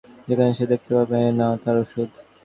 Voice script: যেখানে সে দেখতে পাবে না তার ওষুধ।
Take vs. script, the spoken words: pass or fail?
pass